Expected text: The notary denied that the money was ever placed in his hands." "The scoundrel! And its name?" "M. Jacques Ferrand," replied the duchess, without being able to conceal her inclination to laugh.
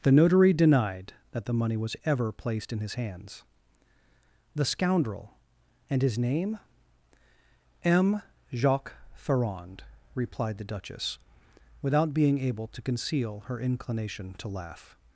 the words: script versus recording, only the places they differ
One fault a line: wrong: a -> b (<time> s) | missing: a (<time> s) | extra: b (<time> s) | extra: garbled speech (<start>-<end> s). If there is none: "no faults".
wrong: its -> his (6.0 s)